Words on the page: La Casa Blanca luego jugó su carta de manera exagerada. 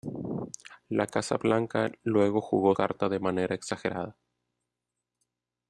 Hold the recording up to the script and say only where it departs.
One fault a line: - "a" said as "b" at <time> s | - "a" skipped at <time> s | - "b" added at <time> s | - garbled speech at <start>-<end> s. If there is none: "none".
- "su" skipped at 2.8 s